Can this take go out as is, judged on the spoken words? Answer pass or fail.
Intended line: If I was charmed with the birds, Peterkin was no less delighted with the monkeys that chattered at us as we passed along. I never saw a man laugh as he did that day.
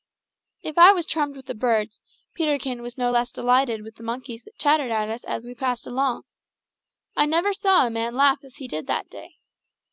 pass